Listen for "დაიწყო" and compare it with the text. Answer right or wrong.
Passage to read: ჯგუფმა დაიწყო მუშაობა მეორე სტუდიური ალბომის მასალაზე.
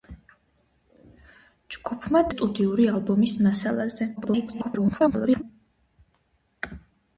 wrong